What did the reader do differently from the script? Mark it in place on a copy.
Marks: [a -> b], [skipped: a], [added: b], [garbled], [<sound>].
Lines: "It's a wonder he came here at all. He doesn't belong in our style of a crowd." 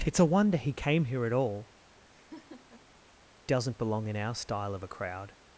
"It's a wonder he came here at all. [skipped: He] [laugh] doesn't belong in our style of a crowd."